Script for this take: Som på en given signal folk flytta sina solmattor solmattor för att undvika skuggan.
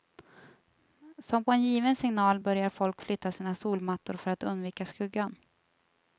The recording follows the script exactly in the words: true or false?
false